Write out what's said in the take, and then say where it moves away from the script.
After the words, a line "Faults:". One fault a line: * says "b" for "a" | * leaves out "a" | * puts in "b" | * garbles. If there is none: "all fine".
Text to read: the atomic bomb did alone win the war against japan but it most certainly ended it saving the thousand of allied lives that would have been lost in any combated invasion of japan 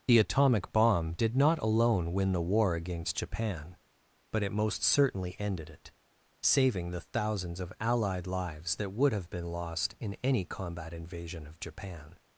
the atomic bomb did not alone win the war against japan but it most certainly ended it saving the thousands of allied lives that would have been lost in any combat invasion of japan
Faults:
* puts in "not"
* says "thousands" for "thousand"
* says "combat" for "combated"